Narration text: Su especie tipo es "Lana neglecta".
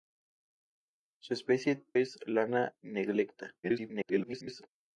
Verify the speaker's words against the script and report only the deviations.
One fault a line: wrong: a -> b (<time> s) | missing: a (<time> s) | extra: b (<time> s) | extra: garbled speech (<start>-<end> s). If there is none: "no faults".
missing: tipo (1.8 s)
extra: garbled speech (3.6-4.7 s)